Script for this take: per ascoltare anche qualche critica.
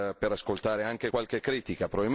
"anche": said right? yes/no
yes